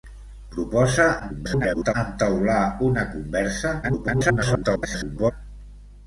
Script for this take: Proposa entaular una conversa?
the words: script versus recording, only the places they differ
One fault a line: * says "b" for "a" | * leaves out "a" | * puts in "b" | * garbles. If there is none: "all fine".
* garbles
* garbles